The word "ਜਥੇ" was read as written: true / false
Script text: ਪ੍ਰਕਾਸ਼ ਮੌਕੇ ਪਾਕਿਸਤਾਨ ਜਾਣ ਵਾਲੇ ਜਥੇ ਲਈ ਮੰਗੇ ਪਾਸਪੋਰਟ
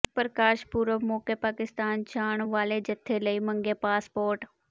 true